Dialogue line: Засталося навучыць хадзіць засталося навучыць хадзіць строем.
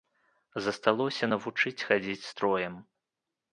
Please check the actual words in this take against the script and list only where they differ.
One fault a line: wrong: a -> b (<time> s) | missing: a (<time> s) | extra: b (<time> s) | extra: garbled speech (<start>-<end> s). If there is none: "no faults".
missing: засталося навучыць хадзіць (2.3 s)